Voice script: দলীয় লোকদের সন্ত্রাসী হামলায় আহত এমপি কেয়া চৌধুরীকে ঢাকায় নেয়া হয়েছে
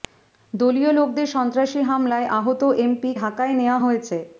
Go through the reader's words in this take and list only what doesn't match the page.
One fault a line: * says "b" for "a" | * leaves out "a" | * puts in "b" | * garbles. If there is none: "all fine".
* leaves out "কেয়া চৌধুরীকে"